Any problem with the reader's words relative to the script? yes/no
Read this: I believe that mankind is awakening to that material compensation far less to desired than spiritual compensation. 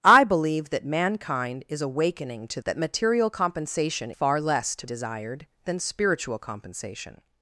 no